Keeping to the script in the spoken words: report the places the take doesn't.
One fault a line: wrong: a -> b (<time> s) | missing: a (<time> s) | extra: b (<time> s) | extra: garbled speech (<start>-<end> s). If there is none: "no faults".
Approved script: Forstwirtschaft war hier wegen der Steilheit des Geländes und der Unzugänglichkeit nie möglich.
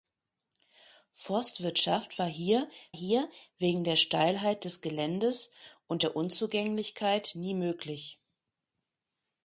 extra: hier (2.9 s)